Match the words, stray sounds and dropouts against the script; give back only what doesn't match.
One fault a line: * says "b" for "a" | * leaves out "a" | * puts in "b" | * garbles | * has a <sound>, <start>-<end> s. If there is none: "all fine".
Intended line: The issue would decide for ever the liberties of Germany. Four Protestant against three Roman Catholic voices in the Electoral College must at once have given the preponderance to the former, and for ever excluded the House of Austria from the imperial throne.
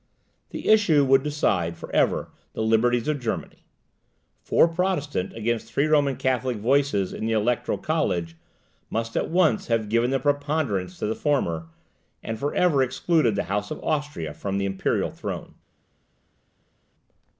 all fine